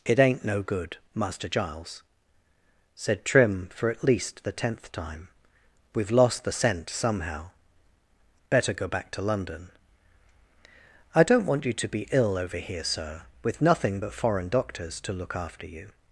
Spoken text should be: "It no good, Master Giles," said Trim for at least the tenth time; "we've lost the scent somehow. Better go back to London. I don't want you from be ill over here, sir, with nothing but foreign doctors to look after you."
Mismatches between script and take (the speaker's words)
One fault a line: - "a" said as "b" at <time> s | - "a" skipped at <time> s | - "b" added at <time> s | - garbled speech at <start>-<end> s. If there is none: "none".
- "ain't" added at 0.2 s
- "from" said as "to" at 11.7 s